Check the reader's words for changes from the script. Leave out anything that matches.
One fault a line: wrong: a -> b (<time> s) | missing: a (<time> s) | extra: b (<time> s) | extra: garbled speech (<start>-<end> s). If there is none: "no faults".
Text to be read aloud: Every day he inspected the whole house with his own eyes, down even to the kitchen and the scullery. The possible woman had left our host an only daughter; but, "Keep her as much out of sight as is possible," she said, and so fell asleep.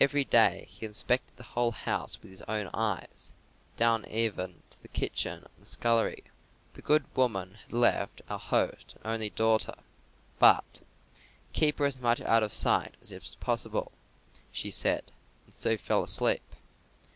wrong: possible -> good (6.8 s)